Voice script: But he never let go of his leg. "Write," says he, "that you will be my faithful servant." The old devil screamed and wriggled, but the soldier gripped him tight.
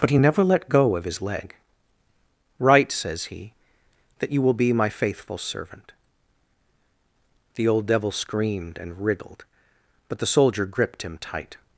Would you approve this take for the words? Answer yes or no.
yes